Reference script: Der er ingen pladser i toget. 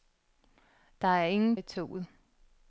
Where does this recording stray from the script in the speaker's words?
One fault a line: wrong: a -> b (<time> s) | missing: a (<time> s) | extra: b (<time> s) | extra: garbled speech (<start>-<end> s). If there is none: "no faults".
missing: pladser (1.6 s)